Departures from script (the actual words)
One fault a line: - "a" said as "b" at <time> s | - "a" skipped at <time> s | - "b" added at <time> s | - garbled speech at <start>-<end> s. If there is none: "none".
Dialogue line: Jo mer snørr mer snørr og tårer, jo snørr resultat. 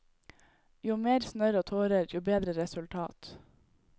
- "mer snørr" skipped at 1.6 s
- "snørr" said as "bedre" at 2.3 s